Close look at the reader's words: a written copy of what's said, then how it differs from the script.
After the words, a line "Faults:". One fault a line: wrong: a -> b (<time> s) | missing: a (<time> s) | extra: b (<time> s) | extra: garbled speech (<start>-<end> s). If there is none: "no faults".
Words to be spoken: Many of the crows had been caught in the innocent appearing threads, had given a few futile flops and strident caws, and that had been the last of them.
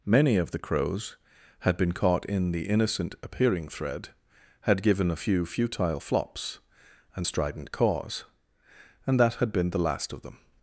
Many of the crows had been caught in the innocent appearing thread, had given a few futile flops and strident caws, and that had been the last of them.
Faults:
wrong: threads -> thread (3.7 s)